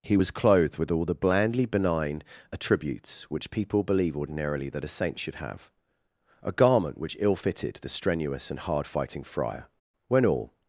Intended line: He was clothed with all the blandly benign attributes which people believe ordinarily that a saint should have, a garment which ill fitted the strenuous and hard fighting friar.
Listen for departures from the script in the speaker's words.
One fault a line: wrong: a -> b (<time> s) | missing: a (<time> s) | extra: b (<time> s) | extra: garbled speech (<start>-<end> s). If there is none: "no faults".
extra: When all (10.1 s)